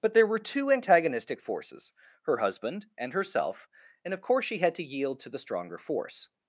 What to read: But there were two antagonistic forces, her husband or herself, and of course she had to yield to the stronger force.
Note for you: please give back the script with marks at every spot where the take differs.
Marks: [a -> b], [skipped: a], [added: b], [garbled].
But there were two antagonistic forces, her husband [or -> and] herself, and of course she had to yield to the stronger force.